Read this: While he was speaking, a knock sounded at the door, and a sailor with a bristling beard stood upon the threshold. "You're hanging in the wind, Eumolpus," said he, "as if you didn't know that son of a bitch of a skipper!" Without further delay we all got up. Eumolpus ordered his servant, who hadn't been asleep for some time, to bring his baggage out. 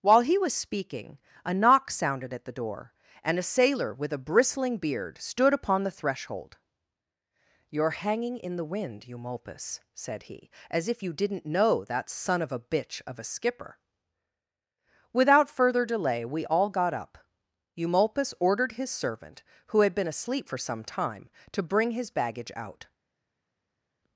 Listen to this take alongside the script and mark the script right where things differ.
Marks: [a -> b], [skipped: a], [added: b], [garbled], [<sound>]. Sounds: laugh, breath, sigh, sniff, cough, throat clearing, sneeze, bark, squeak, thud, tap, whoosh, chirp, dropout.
While he was speaking, a knock sounded at the door, and a sailor with a bristling beard stood upon the threshold. "You're hanging in the wind, Eumolpus," said he, "as if you didn't know that son of a bitch of a skipper!" Without further delay we all got up. Eumolpus ordered his servant, who [hadn't -> had] been asleep for some time, to bring his baggage out.